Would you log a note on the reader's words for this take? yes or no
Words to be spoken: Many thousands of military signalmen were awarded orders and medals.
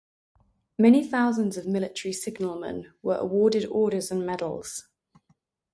no